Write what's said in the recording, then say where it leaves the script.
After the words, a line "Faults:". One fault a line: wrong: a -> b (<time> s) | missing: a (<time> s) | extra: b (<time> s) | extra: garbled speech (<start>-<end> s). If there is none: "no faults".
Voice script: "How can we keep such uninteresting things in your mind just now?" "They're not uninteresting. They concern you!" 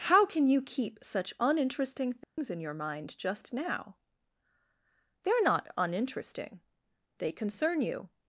"How can you keep such uninteresting things in your mind just now?" "They're not uninteresting. They concern you!"
Faults:
wrong: we -> you (0.5 s)